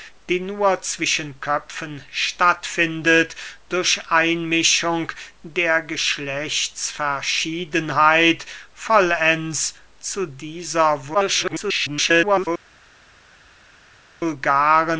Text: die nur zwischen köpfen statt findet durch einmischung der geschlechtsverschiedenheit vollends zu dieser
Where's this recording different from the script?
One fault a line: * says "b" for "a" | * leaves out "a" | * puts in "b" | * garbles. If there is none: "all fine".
* garbles